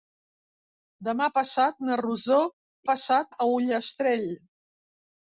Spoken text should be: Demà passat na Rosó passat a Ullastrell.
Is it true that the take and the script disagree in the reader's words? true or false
false